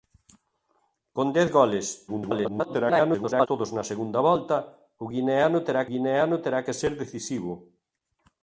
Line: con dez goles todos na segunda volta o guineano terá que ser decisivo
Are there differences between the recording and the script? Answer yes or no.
yes